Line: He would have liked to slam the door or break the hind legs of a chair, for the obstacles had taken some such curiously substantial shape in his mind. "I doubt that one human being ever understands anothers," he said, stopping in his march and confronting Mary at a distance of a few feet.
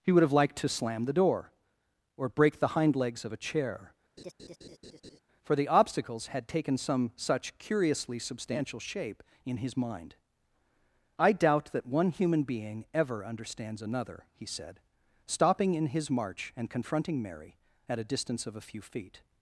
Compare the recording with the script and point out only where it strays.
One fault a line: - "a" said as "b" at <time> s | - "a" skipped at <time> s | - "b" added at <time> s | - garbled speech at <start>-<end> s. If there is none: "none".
- "anothers" said as "another" at 13.8 s